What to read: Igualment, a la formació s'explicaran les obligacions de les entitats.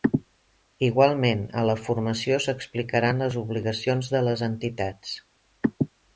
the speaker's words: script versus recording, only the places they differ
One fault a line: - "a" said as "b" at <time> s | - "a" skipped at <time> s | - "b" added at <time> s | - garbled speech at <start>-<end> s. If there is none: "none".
none